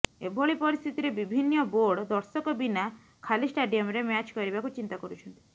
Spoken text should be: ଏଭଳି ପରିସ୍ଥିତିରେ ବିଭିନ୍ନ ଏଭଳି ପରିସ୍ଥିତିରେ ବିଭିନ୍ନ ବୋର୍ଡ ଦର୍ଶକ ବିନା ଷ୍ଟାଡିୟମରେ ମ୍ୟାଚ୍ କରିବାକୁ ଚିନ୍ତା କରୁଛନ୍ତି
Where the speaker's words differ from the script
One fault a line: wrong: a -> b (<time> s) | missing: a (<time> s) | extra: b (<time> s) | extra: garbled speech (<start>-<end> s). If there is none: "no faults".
missing: ଏଭଳି ପରିସ୍ଥିତିରେ ବିଭିନ୍ନ (1.6 s)
extra: ଖାଲି (3.2 s)